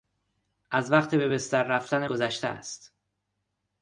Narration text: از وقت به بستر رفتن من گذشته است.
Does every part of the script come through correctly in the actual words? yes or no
no